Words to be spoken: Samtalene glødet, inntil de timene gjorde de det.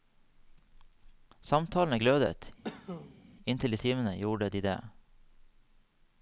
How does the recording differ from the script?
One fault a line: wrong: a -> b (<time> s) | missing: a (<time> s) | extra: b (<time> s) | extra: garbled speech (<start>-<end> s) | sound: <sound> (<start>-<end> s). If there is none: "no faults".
sound: cough (2.6-3.2 s)